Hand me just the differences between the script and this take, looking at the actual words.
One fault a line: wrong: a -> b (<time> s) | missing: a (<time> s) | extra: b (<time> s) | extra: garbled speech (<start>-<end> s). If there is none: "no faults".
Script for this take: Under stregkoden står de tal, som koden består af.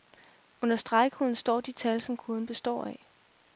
no faults